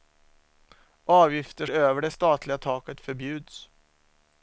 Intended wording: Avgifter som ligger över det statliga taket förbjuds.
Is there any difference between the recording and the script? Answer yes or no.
yes